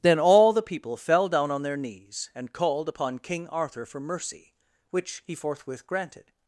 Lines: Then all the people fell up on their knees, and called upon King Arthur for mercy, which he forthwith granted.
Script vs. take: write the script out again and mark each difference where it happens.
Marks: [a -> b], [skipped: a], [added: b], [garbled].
Then all the people fell [up -> down] on their knees, and called upon King Arthur for mercy, which he forthwith granted.